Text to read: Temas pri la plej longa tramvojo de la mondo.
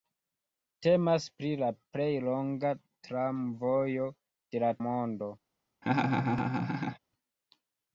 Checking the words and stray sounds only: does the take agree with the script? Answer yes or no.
no